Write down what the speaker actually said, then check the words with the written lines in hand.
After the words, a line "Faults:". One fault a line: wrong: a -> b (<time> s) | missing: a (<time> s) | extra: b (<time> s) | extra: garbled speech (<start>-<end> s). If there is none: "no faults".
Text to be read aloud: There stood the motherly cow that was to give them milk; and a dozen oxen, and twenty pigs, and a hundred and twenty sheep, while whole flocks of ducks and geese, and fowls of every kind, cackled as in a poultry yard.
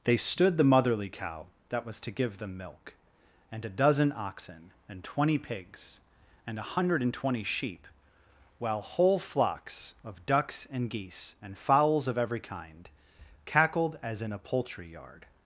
They stood the motherly cow that was to give them milk; and a dozen oxen, and twenty pigs, and a hundred and twenty sheep, while whole flocks of ducks and geese, and fowls of every kind, cackled as in a poultry yard.
Faults:
wrong: There -> They (0.0 s)